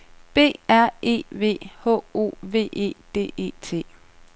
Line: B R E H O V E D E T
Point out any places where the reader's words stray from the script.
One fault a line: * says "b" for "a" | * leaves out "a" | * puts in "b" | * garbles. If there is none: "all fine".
* puts in "V"